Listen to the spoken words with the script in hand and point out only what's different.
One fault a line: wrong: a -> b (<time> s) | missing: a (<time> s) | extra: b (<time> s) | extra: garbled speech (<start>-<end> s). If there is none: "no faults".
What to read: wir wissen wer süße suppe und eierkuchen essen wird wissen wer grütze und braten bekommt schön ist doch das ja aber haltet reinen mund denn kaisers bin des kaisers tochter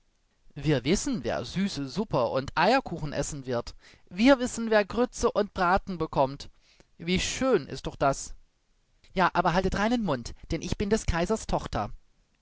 extra: wir (4.1 s)
extra: wie (7.0 s)
wrong: kaisers -> ich (10.6 s)